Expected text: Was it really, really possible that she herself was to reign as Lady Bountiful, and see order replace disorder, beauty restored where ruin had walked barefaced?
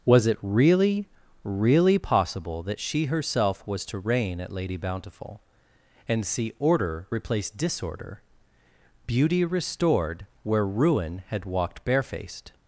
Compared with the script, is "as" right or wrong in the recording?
wrong